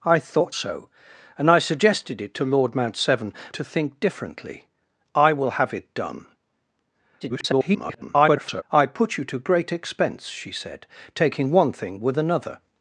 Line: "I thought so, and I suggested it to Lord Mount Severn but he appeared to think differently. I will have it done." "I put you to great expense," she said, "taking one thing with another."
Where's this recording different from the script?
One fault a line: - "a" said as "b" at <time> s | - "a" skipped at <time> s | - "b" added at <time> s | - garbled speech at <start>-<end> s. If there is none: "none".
- "but he appeared" skipped at 3.3 s
- garbled speech at 7.2-8.6 s